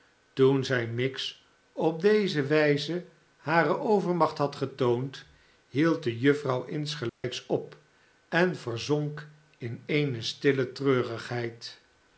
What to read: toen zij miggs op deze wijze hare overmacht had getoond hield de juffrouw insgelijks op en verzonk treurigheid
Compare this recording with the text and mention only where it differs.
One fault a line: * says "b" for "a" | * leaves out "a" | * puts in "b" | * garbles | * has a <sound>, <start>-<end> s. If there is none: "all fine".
* has a dropout, 7.1-7.2 s
* puts in "in eene stille"